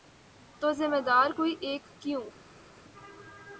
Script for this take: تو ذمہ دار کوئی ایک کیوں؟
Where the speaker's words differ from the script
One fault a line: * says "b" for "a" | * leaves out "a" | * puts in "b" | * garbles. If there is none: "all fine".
all fine